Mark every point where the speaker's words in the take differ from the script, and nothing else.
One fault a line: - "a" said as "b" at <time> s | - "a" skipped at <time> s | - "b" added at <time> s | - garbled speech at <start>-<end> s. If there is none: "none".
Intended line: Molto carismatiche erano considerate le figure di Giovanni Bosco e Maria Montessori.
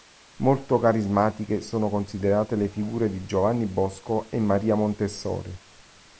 - "erano" said as "sono" at 1.6 s